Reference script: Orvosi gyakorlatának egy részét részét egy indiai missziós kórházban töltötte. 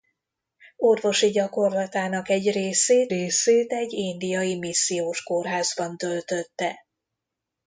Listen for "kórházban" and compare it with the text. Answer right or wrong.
right